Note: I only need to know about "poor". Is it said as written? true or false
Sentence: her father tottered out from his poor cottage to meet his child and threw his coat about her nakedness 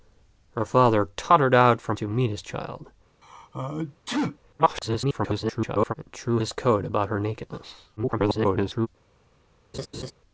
false